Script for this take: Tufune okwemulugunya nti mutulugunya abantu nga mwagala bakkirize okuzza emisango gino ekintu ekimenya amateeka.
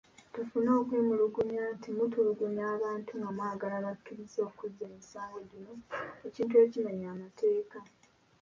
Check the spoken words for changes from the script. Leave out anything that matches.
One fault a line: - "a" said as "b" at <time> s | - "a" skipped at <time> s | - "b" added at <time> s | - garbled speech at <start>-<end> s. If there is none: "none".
none